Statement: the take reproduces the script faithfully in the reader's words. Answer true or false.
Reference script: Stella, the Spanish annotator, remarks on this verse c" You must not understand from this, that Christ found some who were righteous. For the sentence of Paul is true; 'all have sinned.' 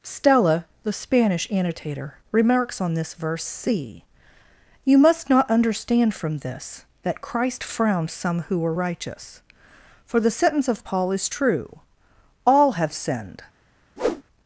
false